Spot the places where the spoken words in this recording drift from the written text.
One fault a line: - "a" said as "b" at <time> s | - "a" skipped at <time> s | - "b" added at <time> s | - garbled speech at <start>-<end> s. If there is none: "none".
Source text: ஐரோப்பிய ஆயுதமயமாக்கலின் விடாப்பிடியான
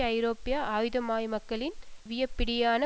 none